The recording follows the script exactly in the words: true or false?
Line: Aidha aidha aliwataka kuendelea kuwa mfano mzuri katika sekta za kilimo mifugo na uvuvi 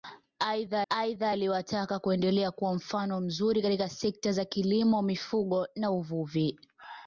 true